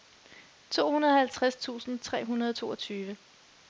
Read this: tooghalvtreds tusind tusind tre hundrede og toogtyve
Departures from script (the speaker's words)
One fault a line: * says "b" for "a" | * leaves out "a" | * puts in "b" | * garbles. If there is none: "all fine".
* leaves out "tusind"